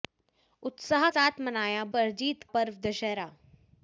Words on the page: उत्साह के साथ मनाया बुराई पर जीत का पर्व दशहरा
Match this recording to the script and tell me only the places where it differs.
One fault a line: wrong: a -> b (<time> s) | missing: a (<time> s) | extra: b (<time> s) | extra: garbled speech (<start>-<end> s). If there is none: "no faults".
missing: के (1.1 s)
missing: बुराई (1.8 s)
missing: का (2.4 s)